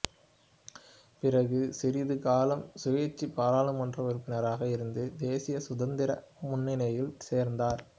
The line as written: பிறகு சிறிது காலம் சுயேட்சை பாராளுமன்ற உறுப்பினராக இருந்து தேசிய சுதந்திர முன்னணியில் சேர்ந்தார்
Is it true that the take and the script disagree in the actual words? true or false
false